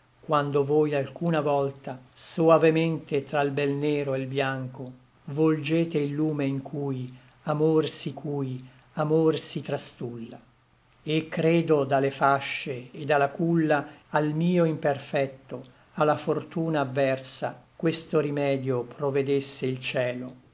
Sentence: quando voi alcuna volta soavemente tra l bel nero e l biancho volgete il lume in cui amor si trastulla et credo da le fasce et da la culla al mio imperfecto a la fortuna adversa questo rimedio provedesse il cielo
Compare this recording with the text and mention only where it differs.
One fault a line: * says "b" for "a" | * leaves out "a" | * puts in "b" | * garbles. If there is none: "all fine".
* puts in "cui amor si"